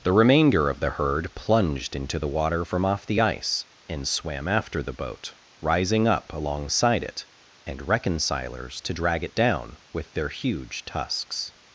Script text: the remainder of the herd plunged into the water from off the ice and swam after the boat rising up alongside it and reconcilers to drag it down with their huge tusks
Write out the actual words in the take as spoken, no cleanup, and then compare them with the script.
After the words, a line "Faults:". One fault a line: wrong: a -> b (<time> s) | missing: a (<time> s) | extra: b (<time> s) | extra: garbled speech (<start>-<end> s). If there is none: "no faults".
the remainder of the herd plunged into the water from off the ice and swam after the boat rising up alongside it and reconcilers to drag it down with their huge tusks
Faults:
no faults